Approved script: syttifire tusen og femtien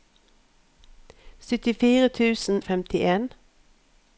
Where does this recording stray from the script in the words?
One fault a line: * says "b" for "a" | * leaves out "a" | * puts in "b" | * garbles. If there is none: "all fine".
all fine